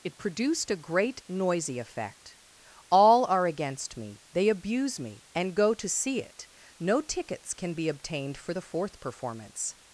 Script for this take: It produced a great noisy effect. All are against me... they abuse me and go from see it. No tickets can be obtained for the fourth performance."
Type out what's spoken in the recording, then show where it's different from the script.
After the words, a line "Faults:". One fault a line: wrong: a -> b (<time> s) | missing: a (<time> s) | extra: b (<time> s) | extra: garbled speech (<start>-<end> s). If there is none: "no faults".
It produced a great noisy effect. All are against me... they abuse me and go to see it. No tickets can be obtained for the fourth performance."
Faults:
wrong: from -> to (5.7 s)